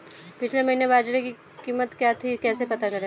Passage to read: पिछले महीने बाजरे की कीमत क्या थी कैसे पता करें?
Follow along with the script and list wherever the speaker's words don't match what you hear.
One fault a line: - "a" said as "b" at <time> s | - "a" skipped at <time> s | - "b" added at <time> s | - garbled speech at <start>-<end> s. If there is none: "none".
none